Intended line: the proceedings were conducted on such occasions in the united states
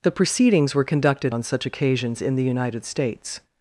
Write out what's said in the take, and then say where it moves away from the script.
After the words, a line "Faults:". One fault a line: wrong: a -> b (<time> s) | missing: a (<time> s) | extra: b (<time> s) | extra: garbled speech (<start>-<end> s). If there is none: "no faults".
the proceedings were conducted on such occasions in the united states
Faults:
no faults